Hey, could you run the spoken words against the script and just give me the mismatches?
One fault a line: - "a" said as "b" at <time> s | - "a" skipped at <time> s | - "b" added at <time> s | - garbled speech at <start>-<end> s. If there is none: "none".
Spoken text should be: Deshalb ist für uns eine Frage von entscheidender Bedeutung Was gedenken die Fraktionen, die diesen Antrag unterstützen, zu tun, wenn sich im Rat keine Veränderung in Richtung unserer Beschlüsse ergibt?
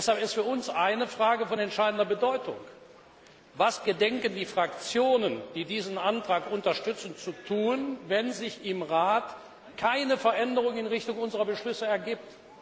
none